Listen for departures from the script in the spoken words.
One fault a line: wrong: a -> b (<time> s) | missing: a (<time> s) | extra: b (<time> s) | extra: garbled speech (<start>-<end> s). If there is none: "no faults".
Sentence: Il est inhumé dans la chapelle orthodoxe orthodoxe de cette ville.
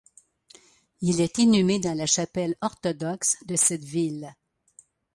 missing: orthodoxe (3.4 s)